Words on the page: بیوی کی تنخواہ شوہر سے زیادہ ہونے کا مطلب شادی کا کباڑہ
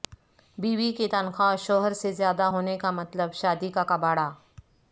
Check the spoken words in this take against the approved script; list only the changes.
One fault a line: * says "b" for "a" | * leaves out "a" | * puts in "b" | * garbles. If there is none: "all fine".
all fine